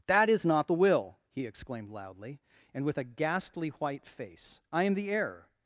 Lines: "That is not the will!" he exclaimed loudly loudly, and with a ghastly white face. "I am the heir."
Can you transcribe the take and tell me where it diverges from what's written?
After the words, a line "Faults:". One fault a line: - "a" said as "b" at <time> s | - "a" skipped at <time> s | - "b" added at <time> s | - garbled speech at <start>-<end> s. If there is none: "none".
"That is not the will!" he exclaimed loudly, and with a ghastly white face. "I am the heir."
Faults:
- "loudly" skipped at 2.4 s